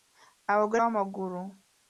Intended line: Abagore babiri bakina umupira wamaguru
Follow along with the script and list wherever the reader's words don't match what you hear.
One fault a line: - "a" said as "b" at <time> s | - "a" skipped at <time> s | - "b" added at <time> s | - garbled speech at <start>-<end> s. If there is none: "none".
- "babiri bakina umupira" skipped at 0.8 s